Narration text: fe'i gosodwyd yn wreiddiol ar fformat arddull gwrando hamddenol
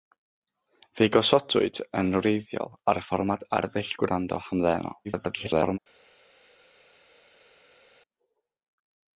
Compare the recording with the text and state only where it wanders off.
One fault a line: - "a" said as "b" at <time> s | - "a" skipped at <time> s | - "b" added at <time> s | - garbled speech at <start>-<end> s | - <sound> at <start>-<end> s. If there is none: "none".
- garbled speech at 5.0-5.8 s